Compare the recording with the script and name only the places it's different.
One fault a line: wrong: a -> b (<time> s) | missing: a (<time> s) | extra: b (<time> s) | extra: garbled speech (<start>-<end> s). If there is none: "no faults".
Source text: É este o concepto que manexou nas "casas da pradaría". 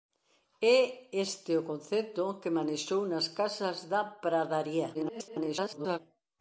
extra: garbled speech (4.9-6.0 s)